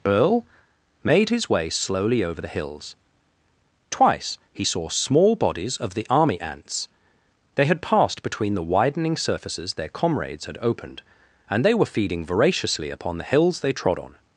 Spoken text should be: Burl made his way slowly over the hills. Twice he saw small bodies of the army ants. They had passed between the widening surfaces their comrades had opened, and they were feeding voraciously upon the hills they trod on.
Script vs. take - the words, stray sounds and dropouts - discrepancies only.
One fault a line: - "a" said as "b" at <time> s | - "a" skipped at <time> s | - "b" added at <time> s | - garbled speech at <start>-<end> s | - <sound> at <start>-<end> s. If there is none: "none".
- "Burl" said as "Earl" at 0.1 s